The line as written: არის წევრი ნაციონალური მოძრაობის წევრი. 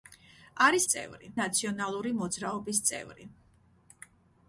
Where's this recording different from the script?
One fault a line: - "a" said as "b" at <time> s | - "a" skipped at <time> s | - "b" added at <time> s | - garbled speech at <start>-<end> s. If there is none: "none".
none